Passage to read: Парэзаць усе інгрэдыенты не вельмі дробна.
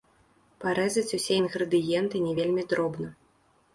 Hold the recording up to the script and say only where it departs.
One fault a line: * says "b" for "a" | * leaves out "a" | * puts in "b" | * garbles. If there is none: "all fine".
all fine